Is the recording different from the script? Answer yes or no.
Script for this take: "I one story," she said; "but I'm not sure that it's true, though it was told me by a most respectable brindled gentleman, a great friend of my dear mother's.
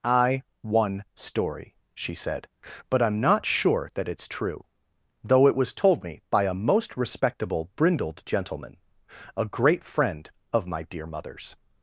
no